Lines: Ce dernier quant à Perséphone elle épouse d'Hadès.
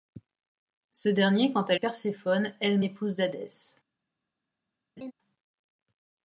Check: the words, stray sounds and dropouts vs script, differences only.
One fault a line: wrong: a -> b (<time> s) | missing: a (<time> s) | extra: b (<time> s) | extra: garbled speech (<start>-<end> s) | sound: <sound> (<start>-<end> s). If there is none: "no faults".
sound: laugh (5.0-5.1 s)